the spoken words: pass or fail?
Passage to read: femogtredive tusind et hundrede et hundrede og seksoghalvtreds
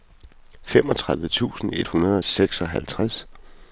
fail